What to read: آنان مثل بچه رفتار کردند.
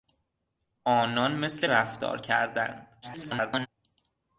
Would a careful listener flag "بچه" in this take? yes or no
yes